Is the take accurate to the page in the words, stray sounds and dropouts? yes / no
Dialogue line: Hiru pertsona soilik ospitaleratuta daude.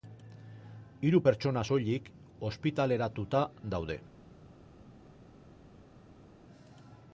yes